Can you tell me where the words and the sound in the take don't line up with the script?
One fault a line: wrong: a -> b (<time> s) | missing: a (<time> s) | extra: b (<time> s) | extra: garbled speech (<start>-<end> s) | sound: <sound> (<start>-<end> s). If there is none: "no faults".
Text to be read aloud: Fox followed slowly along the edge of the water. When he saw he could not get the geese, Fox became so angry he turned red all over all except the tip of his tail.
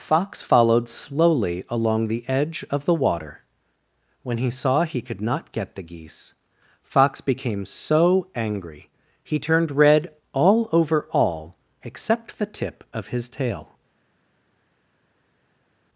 no faults